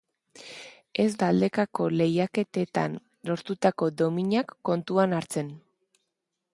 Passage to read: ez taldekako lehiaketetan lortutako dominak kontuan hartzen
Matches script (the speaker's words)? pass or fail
pass